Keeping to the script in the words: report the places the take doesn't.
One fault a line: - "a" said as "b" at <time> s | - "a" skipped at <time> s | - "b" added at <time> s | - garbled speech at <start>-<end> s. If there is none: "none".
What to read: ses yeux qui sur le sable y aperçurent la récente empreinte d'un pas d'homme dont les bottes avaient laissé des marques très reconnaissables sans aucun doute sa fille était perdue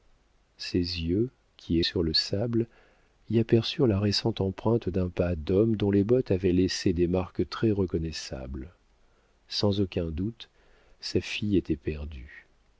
none